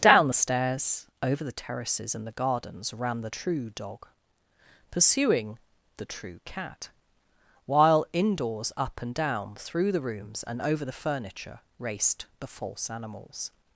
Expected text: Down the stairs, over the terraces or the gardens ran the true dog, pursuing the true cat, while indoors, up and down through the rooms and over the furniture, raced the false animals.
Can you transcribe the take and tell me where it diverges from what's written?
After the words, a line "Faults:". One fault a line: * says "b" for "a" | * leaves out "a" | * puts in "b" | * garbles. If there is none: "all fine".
Down the stairs, over the terraces and the gardens ran the true dog, pursuing the true cat, while indoors, up and down through the rooms and over the furniture, raced the false animals.
Faults:
* says "and" for "or"